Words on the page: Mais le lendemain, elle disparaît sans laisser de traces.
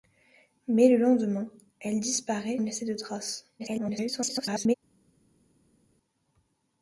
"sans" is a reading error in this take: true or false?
true